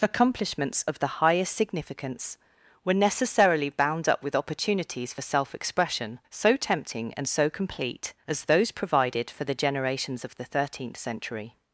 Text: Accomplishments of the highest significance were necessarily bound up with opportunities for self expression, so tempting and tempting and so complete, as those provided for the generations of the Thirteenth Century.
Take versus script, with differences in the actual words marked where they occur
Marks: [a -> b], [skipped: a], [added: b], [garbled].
Accomplishments of the highest significance were necessarily bound up with opportunities for self expression, so tempting and [skipped: tempting and] so complete, as those provided for the generations of the Thirteenth Century.